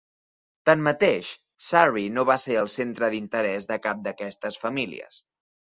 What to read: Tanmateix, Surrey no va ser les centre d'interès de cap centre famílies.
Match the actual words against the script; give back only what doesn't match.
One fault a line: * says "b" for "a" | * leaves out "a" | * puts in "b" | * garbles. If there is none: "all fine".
* says "el" for "les"
* says "d'aquestes" for "centre"